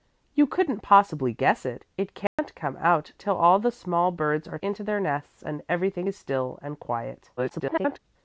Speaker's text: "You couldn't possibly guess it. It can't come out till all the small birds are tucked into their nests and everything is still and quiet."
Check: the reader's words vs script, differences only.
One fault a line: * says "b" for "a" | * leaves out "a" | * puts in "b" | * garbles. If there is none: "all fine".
* leaves out "tucked"
* garbles